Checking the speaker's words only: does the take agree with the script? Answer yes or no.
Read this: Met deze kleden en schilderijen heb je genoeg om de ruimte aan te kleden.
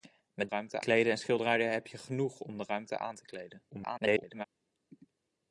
no